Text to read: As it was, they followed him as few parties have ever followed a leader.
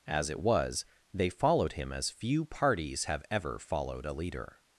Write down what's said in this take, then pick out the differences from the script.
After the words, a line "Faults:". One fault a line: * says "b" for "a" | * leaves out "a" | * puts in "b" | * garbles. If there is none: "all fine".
As it was, they followed him as few parties have ever followed a leader.
Faults:
all fine